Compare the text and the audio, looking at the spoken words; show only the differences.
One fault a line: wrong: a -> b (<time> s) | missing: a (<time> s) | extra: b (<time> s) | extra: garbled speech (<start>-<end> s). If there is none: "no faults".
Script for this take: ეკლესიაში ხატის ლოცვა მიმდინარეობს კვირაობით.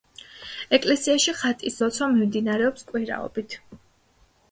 no faults